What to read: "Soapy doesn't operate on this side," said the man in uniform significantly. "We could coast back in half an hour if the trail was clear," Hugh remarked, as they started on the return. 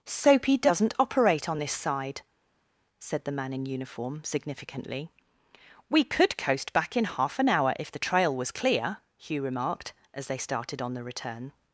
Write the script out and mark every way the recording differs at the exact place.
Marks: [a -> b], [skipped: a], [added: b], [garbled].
"Soapy doesn't operate on this side," said the man in uniform significantly. "We could coast back in half an hour if the trail was clear," Hugh remarked, as they started on the return.